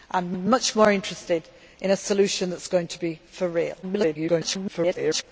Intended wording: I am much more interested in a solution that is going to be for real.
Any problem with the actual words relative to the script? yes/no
yes